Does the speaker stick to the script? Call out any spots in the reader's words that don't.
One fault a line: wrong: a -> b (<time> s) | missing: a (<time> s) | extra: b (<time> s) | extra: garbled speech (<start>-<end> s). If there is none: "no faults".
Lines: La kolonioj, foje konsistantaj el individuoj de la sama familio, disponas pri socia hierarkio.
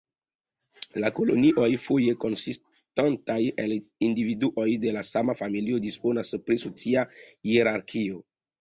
no faults